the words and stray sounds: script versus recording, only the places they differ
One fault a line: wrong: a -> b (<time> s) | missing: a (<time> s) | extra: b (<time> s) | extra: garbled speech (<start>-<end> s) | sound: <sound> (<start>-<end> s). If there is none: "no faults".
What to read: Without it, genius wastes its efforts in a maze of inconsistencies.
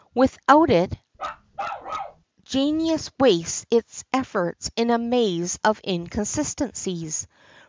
sound: bark (1.1-2.2 s)